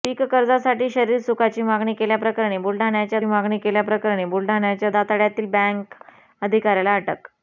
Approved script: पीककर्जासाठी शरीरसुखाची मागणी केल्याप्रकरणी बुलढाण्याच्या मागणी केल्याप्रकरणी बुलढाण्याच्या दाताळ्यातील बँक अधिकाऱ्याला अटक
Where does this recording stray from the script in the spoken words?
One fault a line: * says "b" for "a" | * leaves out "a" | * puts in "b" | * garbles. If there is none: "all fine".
all fine